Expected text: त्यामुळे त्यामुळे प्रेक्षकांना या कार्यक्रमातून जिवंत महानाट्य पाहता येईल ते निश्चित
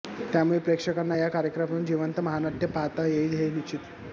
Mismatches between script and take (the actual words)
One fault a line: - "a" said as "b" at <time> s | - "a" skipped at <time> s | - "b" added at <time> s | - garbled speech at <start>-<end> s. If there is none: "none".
- "त्यामुळे" skipped at 0.6 s
- "ते" said as "हे" at 3.3 s